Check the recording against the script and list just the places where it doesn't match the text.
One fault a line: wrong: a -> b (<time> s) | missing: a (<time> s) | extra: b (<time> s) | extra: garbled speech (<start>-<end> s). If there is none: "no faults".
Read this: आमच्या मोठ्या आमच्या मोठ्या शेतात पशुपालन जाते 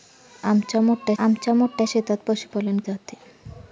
no faults